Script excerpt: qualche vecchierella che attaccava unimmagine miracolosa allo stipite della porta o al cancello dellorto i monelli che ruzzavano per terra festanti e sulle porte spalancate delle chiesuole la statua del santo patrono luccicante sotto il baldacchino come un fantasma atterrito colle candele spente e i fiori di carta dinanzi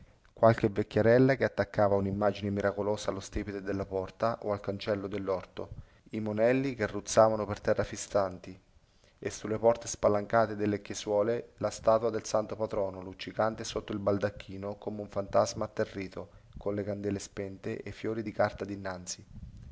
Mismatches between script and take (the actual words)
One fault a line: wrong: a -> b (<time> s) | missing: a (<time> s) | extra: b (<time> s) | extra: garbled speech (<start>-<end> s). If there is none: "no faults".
no faults